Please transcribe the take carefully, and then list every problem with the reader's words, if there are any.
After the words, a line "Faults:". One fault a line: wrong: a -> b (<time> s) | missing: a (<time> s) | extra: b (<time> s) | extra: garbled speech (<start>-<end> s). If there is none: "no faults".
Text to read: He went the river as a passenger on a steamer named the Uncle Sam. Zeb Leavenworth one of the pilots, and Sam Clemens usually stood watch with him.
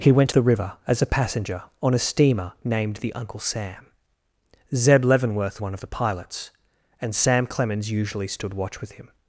He went the river as a passenger on a steamer named the Uncle Sam. Zeb Leavenworth one of the pilots, and Sam Clemens usually stood watch with him.
Faults:
no faults